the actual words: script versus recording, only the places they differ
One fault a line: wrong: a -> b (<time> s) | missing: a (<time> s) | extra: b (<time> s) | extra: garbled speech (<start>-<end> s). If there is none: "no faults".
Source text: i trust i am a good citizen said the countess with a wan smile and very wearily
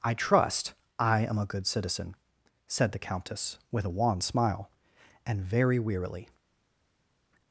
no faults